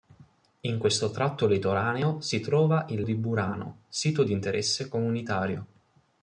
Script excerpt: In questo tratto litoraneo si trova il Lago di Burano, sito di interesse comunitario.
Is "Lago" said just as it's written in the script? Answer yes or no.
no